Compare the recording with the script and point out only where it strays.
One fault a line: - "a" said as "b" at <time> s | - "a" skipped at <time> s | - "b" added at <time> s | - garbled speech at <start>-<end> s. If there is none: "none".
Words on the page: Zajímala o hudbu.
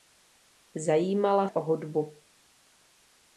none